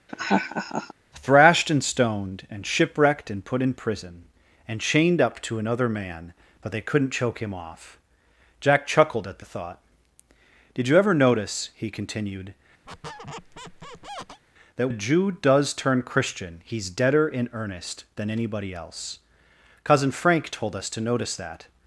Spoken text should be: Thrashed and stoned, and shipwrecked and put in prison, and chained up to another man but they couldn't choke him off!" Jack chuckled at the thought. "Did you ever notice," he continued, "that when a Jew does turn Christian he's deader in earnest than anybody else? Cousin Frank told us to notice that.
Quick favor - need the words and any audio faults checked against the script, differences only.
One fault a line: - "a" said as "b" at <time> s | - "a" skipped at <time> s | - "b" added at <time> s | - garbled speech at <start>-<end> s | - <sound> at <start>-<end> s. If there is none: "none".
- laugh at 0.1-0.9 s
- squeak at 12.9-14.4 s
- "when" skipped at 14.9 s